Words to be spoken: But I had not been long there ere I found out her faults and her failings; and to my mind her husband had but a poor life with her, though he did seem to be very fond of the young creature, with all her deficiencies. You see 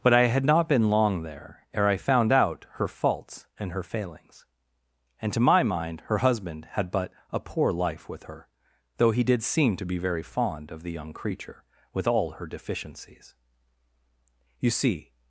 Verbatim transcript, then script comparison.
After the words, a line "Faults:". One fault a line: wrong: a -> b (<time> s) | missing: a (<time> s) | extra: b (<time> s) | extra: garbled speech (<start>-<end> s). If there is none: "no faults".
But I had not been long there ere I found out her faults and her failings; and to my mind her husband had but a poor life with her, though he did seem to be very fond of the young creature, with all her deficiencies. You see
Faults:
no faults